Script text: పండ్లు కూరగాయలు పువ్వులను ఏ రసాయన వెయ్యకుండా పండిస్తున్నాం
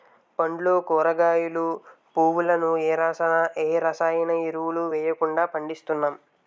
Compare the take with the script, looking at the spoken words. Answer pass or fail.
fail